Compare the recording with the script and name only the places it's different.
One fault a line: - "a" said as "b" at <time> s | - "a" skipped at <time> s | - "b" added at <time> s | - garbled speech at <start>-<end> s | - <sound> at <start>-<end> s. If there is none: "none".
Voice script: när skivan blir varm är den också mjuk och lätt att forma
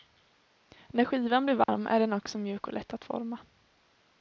- dropout at 1.6-1.7 s